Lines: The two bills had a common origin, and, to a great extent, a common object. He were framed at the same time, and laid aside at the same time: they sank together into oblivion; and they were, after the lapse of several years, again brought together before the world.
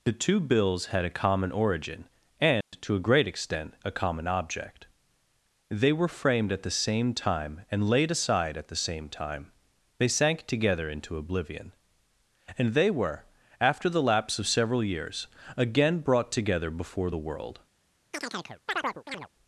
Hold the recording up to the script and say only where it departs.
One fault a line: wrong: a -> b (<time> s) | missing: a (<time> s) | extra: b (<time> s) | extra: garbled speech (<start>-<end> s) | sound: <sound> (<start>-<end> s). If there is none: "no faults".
sound: dropout (2.6-2.7 s)
wrong: He -> They (5.7 s)
sound: chirp (18.1-19.3 s)